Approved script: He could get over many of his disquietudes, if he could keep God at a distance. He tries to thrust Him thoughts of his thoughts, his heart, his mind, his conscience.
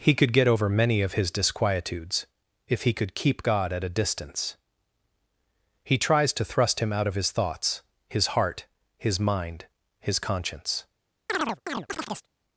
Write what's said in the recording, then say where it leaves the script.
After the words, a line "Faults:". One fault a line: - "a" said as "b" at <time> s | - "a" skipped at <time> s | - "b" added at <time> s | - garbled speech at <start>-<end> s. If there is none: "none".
He could get over many of his disquietudes, if he could keep God at a distance. He tries to thrust Him out of his thoughts, his heart, his mind, his conscience.
Faults:
- "thoughts" said as "out" at 6.9 s